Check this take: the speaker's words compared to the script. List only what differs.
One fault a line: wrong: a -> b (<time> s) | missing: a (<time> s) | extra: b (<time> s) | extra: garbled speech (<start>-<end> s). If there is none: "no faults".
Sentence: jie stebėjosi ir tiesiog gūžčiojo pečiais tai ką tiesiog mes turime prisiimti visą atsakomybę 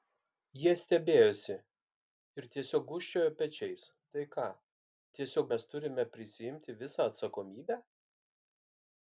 no faults